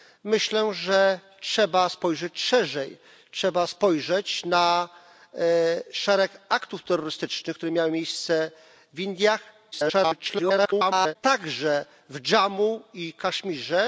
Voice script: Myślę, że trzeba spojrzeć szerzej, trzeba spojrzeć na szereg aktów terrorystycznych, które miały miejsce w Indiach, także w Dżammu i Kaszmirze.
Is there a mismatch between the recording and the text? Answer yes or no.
yes